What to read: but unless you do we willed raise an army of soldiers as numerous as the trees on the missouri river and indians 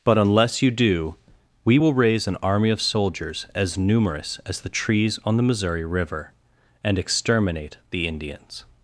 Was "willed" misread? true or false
true